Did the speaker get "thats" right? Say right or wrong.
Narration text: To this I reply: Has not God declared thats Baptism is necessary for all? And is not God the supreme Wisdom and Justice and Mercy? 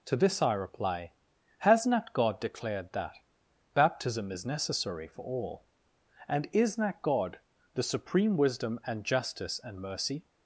wrong